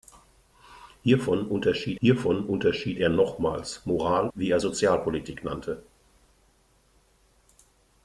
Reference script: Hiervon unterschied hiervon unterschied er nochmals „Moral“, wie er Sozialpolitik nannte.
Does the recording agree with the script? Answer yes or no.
yes